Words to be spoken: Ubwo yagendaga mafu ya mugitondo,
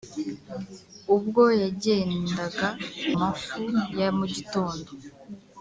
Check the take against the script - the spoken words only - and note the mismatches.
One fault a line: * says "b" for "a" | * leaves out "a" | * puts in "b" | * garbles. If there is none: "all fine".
all fine